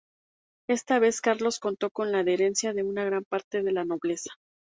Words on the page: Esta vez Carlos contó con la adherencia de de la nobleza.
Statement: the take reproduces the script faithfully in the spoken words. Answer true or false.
false